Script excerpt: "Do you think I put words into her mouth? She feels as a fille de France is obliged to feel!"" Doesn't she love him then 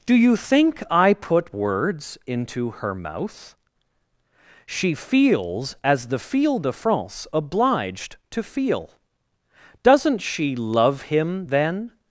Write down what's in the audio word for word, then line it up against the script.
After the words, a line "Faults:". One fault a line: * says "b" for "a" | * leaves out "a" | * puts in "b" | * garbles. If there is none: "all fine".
"Do you think I put words into her mouth? She feels as the fille de France obliged to feel!"" Doesn't she love him then
Faults:
* says "the" for "a"
* leaves out "is"